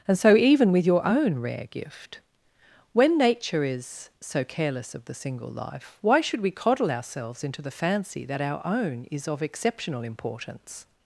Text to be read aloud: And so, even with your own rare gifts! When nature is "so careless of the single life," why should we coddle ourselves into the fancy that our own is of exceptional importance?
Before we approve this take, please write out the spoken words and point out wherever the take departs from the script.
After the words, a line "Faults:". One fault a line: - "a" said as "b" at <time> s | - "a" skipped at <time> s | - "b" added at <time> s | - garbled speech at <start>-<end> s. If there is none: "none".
And so, even with your own rare gift! When nature is "so careless of the single life," why should we coddle ourselves into the fancy that our own is of exceptional importance?
Faults:
- "gifts" said as "gift" at 1.7 s